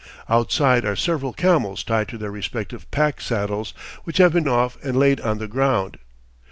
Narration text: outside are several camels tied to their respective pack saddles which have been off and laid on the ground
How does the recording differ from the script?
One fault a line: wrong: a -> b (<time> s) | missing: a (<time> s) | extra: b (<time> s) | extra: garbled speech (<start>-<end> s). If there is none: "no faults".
no faults